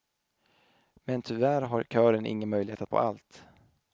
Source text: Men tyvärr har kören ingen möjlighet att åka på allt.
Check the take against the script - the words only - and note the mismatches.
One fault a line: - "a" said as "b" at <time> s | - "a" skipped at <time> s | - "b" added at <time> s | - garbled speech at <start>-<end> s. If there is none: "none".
- "åka" skipped at 2.9 s